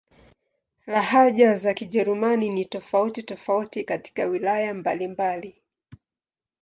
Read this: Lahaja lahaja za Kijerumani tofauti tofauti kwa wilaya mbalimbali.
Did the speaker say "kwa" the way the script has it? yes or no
no